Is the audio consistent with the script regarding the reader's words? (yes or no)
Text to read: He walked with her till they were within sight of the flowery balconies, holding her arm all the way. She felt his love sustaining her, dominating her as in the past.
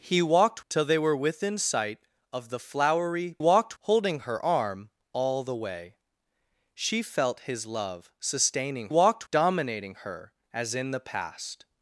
no